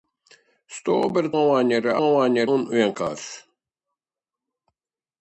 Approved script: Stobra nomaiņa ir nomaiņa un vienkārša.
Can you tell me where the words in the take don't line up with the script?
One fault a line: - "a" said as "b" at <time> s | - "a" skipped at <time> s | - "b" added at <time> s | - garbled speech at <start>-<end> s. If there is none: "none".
none